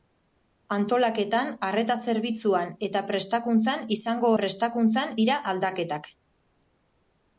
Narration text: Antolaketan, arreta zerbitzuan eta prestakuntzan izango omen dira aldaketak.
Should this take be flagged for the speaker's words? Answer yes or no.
yes